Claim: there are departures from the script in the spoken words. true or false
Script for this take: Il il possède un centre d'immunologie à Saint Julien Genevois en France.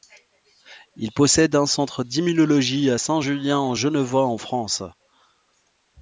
true